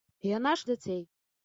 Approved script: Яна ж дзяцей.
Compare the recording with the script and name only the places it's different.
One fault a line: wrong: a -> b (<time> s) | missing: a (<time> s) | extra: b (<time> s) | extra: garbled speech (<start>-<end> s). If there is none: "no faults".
no faults